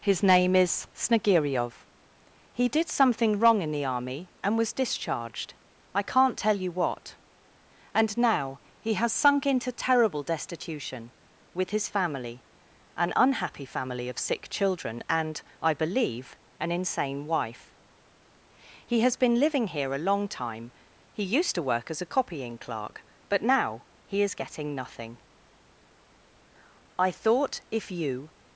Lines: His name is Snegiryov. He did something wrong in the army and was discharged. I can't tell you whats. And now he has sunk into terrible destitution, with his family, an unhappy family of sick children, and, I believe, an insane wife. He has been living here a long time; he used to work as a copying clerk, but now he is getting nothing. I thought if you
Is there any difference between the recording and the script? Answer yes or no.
yes